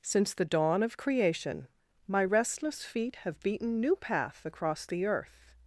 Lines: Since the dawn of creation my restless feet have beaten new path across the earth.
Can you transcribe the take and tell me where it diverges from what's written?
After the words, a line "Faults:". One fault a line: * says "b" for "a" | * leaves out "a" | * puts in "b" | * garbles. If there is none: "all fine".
Since the dawn of creation my restless feet have beaten new path across the earth.
Faults:
all fine